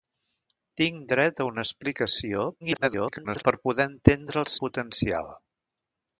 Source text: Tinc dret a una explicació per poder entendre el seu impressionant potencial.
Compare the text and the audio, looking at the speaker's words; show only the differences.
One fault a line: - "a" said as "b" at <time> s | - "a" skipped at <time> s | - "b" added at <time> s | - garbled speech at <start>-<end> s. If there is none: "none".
- garbled speech at 2.6-3.4 s
- "seu impressionant" skipped at 4.5 s